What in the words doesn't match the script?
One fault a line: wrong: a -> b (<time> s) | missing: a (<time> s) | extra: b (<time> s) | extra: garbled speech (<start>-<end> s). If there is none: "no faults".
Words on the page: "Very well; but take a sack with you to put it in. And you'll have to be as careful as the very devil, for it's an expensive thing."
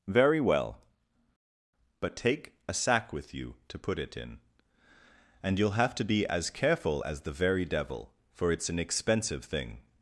no faults